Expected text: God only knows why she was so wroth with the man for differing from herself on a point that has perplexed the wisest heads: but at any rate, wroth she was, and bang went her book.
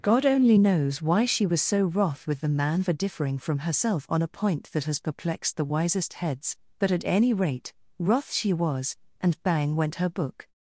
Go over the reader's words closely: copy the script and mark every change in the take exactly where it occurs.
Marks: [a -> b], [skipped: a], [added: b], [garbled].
God only knows why she was so wroth with the man for differing from herself on a point that has perplexed the wisest heads: but at any rate, wroth she was, and bang went her book.